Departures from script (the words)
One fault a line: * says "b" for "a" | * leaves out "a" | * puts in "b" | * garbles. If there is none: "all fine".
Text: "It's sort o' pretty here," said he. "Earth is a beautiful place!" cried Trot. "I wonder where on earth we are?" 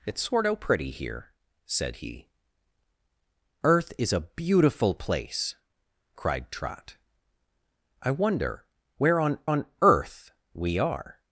* puts in "on"